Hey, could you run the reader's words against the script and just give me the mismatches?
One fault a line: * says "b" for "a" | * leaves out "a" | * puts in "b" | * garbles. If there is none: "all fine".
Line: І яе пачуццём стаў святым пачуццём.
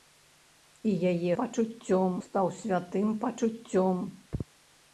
all fine